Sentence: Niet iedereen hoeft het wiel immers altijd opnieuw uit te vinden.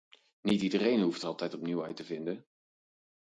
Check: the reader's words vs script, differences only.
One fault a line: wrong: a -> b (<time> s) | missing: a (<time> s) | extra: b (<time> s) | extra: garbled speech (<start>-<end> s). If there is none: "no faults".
missing: het wiel immers (1.2 s)